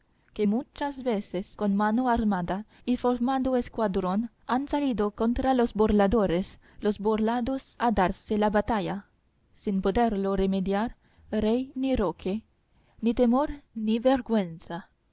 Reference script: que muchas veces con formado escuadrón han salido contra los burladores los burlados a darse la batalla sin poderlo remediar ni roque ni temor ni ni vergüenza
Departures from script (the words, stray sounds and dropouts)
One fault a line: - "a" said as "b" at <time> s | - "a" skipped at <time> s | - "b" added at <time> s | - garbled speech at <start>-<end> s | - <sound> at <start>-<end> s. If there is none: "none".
- "mano armada y" added at 1.7 s
- "rey" added at 11.3 s
- "ni" skipped at 14.0 s